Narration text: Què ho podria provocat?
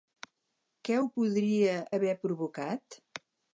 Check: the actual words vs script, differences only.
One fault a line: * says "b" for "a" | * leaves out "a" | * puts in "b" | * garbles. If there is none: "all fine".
* puts in "haver"